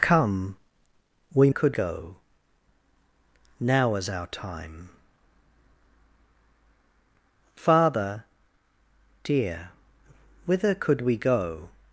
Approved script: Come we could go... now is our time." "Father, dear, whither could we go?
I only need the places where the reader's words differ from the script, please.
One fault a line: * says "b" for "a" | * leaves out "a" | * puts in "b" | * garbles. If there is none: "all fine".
all fine